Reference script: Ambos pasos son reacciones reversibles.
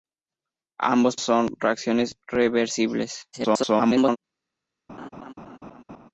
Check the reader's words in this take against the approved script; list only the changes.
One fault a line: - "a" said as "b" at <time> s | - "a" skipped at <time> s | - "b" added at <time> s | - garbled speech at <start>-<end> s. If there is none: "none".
- "pasos" skipped at 1.1 s
- garbled speech at 3.3-4.2 s